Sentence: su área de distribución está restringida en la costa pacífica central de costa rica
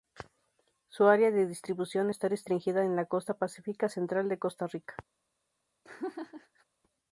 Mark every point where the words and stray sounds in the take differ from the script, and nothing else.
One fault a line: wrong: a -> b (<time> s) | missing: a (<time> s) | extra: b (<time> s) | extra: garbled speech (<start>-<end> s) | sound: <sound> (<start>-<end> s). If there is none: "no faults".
sound: laugh (5.8-6.6 s)